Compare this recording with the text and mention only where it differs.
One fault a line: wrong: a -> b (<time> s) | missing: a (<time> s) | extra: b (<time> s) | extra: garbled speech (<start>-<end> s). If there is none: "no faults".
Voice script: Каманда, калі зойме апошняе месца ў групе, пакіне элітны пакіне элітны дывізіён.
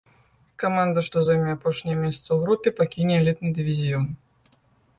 wrong: калі -> што (1.1 s)
missing: пакіне элітны (3.5 s)